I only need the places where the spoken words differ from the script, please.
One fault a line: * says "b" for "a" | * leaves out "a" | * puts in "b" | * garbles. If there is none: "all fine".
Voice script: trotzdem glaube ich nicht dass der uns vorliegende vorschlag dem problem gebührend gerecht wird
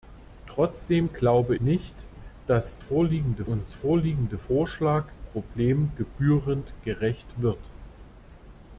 * leaves out "ich"
* says "vorliegende" for "der"
* leaves out "dem"